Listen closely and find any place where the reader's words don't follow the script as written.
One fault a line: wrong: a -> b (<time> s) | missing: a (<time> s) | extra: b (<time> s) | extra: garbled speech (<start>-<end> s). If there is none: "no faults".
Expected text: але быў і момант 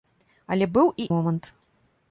no faults